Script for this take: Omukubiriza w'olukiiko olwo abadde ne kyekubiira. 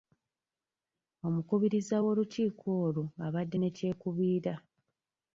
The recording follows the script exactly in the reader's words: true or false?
true